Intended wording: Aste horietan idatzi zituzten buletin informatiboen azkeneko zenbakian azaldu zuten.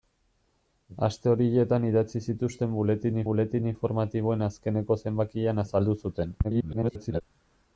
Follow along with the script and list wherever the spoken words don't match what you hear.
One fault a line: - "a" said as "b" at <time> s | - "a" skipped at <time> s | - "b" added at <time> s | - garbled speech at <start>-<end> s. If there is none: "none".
- "buletin" added at 3.3 s
- garbled speech at 6.4-7.2 s